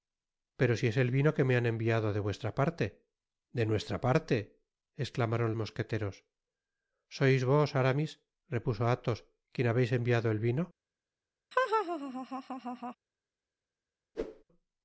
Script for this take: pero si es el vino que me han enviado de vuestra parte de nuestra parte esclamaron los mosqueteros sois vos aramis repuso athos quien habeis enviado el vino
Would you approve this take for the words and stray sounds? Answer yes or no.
no